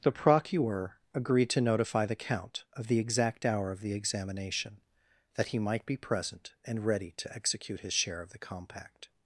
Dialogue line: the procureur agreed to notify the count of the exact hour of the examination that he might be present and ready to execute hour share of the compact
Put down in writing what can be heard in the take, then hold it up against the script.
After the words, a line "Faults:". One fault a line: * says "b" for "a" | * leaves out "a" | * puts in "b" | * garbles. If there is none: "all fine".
the procureur agreed to notify the count of the exact hour of the examination that he might be present and ready to execute his share of the compact
Faults:
* says "his" for "hour"